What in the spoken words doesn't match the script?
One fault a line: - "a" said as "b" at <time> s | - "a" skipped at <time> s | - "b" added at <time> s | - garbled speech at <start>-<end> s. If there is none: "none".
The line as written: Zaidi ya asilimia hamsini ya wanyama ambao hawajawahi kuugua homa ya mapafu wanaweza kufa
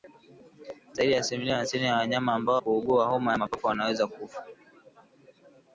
- "hawajawahi" skipped at 2.6 s